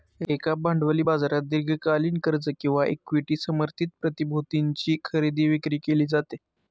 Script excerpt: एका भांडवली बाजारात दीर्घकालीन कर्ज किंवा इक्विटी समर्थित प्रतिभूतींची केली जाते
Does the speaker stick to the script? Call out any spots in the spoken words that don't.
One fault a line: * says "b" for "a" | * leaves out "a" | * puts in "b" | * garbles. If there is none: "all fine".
* puts in "खरेदी विक्री"